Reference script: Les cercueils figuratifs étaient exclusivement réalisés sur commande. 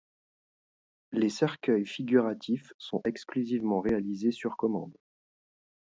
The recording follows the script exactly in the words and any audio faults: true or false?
false